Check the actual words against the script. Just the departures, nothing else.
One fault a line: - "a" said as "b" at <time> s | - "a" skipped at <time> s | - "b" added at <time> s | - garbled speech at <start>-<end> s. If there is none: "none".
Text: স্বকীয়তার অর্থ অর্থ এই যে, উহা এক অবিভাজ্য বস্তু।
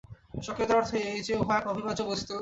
- "অর্থ" skipped at 0.9 s